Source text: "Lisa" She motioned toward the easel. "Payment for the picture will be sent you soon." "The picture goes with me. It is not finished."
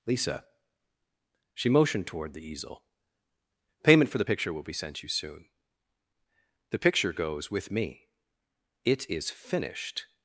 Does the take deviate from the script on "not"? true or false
true